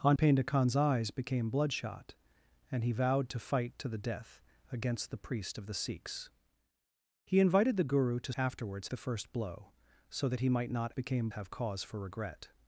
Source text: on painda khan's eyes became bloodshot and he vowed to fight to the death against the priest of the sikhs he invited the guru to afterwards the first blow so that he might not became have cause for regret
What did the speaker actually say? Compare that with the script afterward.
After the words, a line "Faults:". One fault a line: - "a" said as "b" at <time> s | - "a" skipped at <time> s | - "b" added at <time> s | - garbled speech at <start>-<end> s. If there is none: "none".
on painda khan's eyes became bloodshot and he vowed to fight to the death against the priest of the sikhs he invited the guru to afterwards the first blow so that he might not became have cause for regret
Faults:
none